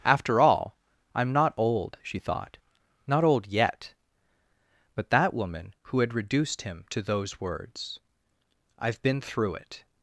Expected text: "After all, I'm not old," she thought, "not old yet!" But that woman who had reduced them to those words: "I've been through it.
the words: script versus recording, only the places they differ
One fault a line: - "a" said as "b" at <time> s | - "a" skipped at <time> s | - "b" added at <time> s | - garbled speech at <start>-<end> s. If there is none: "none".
- "them" said as "him" at 6.6 s